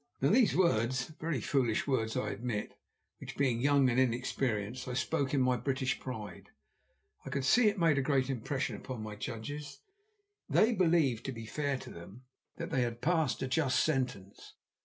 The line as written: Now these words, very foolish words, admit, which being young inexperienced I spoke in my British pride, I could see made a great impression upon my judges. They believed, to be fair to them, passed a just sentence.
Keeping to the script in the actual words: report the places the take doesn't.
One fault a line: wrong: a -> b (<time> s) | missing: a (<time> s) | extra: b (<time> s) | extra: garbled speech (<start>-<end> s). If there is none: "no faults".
extra: I (2.2 s)
extra: and (3.9 s)
extra: that they had (12.6 s)